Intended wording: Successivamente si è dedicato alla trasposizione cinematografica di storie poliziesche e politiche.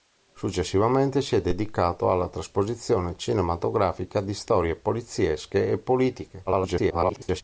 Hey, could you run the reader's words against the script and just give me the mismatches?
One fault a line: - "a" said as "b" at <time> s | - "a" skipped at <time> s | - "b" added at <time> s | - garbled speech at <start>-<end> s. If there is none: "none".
- garbled speech at 6.5-7.4 s